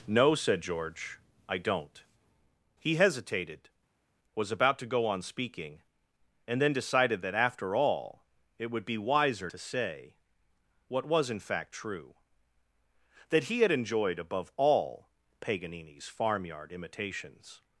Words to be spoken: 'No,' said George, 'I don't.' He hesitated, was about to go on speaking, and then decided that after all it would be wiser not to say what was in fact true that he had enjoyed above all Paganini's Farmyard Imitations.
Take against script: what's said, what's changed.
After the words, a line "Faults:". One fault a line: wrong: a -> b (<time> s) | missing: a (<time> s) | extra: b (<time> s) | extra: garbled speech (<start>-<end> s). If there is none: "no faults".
'No,' said George, 'I don't.' He hesitated, was about to go on speaking, and then decided that after all it would be wiser to say what was in fact true that he had enjoyed above all Paganini's Farmyard Imitations.
Faults:
missing: not (9.5 s)